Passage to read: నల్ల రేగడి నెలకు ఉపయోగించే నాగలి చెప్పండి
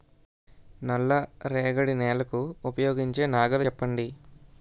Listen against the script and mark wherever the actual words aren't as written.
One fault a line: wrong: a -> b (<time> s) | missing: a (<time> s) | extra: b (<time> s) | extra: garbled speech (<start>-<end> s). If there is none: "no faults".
no faults